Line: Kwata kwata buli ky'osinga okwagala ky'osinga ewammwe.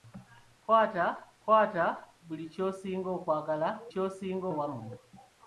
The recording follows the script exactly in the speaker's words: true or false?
true